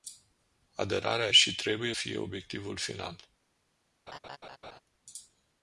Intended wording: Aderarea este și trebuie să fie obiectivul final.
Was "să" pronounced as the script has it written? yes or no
no